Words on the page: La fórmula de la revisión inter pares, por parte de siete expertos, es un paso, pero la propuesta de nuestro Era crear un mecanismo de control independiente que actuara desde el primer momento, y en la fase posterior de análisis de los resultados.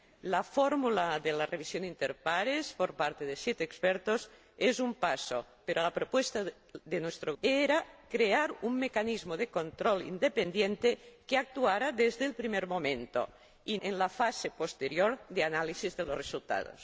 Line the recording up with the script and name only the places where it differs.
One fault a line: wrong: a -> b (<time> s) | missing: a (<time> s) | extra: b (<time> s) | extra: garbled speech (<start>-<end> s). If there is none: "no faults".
no faults